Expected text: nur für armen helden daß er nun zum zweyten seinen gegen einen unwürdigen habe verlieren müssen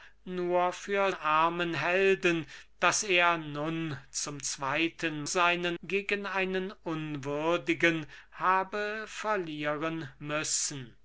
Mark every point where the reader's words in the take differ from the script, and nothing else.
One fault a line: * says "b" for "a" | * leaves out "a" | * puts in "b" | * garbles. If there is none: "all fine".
all fine